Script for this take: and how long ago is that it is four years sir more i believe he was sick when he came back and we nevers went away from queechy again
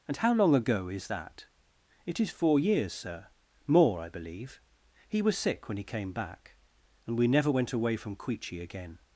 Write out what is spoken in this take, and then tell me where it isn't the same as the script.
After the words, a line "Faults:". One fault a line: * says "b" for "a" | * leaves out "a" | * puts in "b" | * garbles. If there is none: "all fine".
and how long ago is that it is four years sir more i believe he was sick when he came back and we never went away from queechy again
Faults:
* says "never" for "nevers"